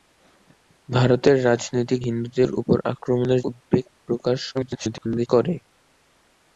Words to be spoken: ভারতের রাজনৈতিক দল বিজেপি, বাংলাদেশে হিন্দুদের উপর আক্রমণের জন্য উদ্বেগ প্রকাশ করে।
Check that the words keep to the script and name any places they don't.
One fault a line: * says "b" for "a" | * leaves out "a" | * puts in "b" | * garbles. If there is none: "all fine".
* leaves out "দল বিজেপি বাংলাদেশে"
* leaves out "জন্য"
* garbles